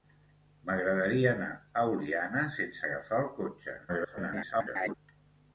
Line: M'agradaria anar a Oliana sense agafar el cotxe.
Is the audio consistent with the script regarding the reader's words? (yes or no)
no